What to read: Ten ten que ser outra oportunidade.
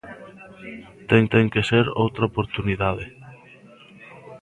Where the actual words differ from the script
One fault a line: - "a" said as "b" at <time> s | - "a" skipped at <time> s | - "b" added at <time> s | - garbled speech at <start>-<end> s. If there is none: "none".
none